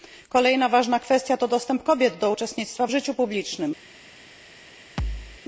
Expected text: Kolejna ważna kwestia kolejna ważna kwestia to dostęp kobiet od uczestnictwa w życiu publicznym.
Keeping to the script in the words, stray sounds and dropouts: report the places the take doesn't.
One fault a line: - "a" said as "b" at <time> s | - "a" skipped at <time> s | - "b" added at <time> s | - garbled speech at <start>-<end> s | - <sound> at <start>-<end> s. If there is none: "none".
- "kolejna ważna kwestia" skipped at 1.4 s
- "od" said as "do" at 2.2 s
- thud at 5.0-5.4 s